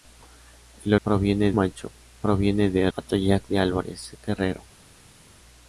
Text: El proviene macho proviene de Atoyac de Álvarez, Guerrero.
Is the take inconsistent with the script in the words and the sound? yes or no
no